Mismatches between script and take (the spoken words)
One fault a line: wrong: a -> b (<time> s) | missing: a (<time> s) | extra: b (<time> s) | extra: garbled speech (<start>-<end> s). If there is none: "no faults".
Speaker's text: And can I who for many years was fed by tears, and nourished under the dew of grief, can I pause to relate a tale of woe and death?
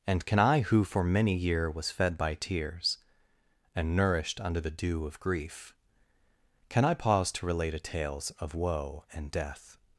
wrong: years -> year (1.4 s)
wrong: tale -> tales (7.8 s)